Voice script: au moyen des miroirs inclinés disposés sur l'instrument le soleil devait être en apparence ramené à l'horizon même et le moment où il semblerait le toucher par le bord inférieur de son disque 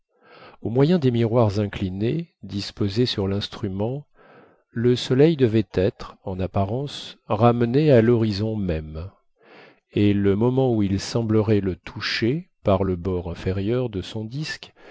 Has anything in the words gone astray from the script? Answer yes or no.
no